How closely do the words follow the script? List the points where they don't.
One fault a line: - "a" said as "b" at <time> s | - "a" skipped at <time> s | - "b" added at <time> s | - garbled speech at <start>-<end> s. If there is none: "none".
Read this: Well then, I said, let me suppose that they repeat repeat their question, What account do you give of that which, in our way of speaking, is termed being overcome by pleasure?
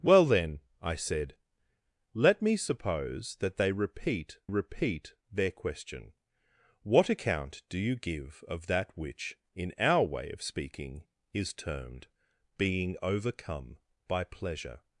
none